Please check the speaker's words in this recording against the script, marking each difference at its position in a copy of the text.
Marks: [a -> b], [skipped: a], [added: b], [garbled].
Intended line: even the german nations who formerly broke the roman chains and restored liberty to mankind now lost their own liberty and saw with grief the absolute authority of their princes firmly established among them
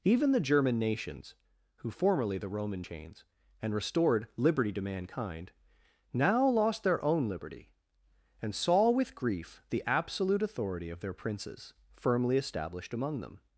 even the german nations who formerly [skipped: broke] the roman chains and restored liberty to mankind now lost their own liberty and saw with grief the absolute authority of their princes firmly established among them